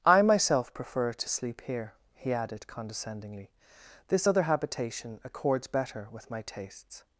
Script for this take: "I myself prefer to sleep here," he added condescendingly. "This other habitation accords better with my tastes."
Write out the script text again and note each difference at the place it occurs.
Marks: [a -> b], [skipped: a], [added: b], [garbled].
"I myself prefer to sleep here," he added condescendingly. "This other habitation accords better with my tastes."